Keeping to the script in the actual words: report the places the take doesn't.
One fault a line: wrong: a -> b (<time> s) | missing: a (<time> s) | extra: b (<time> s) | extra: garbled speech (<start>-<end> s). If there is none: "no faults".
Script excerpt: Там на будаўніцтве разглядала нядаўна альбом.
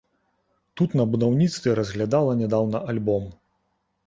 wrong: Там -> Тут (0.8 s)